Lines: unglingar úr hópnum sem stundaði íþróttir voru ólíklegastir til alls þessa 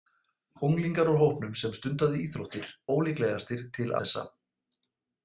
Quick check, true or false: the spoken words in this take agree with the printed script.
false